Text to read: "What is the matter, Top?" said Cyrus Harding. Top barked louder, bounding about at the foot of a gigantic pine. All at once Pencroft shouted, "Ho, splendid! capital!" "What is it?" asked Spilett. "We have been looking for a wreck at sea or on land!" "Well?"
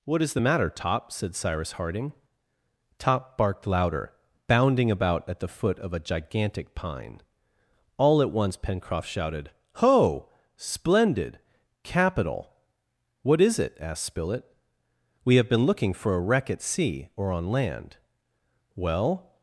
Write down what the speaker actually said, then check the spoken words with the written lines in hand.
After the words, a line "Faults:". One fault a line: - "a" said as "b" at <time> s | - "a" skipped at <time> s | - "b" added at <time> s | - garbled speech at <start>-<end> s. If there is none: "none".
"What is the matter, Top?" said Cyrus Harding. Top barked louder, bounding about at the foot of a gigantic pine. All at once Pencroft shouted, "Ho, splendid! capital!" "What is it?" asked Spilett. "We have been looking for a wreck at sea or on land!" "Well?"
Faults:
none